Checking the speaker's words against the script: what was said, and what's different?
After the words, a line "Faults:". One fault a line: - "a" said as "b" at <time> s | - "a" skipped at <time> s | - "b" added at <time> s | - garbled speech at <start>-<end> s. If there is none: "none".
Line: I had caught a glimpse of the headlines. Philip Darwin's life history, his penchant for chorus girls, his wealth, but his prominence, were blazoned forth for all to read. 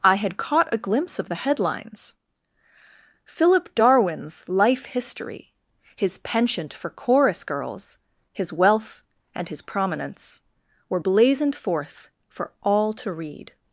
I had caught a glimpse of the headlines. Philip Darwin's life history, his penchant for chorus girls, his wealth, and his prominence, were blazoned forth for all to read.
Faults:
- "but" said as "and" at 9.3 s